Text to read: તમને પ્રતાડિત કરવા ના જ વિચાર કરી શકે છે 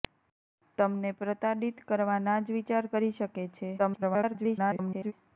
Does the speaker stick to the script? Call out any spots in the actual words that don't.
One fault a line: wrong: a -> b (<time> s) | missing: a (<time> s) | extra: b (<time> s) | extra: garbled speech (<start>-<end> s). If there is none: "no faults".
extra: garbled speech (3.8-5.1 s)